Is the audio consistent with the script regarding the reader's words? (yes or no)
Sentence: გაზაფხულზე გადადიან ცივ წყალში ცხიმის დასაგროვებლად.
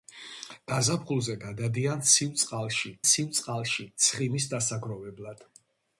no